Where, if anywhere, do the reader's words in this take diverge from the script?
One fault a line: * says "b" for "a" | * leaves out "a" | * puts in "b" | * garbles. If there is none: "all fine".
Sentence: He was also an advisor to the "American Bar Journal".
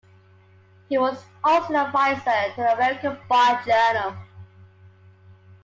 all fine